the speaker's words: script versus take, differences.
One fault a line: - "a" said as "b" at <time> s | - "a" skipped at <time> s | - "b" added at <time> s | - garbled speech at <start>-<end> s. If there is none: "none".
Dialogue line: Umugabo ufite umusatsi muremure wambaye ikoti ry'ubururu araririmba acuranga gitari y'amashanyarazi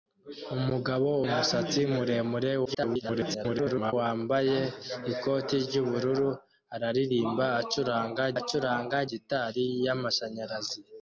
- "ufite" skipped at 1.1 s
- garbled speech at 2.7-3.9 s
- "acuranga" added at 8.4 s